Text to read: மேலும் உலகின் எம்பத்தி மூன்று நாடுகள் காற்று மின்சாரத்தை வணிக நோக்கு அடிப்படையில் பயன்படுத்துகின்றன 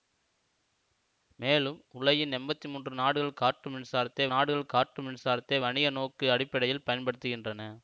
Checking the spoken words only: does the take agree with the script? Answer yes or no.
no